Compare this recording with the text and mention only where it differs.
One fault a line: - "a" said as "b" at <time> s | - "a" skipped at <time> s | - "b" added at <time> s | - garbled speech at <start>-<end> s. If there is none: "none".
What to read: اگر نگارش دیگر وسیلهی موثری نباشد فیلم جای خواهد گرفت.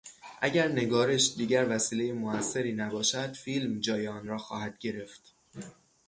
- "آن را" added at 4.1 s